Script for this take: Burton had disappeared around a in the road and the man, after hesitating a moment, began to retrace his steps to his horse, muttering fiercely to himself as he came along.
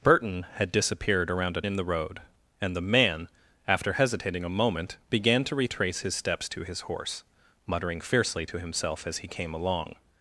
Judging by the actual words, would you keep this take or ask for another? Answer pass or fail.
pass